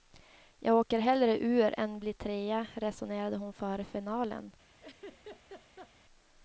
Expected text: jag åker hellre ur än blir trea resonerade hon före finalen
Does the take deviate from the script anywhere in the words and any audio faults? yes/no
yes